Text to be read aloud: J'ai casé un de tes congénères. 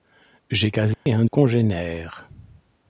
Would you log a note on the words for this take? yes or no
yes